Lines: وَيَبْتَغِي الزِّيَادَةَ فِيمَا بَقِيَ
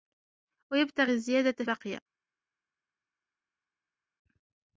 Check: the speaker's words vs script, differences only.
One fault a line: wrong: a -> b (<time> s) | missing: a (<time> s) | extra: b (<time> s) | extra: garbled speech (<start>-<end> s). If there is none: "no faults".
missing: فِيمَا (1.6 s)